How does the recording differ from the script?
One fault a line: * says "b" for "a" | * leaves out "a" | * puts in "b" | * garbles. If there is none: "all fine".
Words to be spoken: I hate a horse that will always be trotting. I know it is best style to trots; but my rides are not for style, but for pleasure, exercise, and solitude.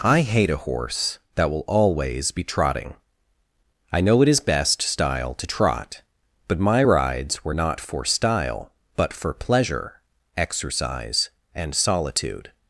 * says "trot" for "trots"
* says "were" for "are"